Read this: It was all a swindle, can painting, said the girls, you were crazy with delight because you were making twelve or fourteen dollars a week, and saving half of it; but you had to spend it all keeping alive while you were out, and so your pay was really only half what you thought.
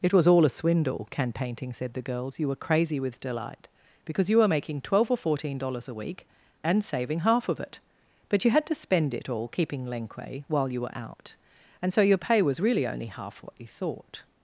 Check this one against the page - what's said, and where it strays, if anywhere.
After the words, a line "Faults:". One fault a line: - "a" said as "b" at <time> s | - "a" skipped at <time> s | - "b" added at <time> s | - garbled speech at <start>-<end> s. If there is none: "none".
It was all a swindle, can painting, said the girls, you were crazy with delight because you were making twelve or fourteen dollars a week, and saving half of it; but you had to spend it all keeping lenque while you were out, and so your pay was really only half what you thought.
Faults:
- "alive" said as "lenque" at 9.8 s